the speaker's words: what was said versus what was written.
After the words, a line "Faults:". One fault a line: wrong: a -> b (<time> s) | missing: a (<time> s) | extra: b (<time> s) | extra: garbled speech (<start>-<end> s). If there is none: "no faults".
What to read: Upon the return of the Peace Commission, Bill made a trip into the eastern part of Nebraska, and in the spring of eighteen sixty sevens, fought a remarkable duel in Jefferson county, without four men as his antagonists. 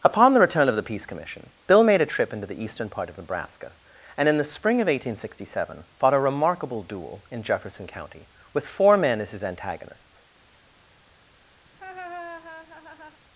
Upon the return of the Peace Commission, Bill made a trip into the eastern part of Nebraska, and in the spring of eighteen sixty seven, fought a remarkable duel in Jefferson county, with four men as his antagonists.
Faults:
wrong: sevens -> seven (5.5 s)
wrong: without -> with (8.5 s)